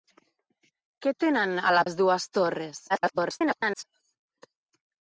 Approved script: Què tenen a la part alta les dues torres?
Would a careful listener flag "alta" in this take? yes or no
yes